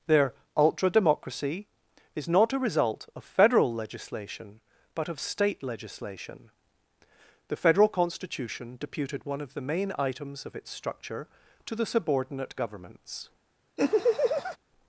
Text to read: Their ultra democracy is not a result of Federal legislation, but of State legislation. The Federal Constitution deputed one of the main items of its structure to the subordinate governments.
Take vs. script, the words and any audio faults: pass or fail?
fail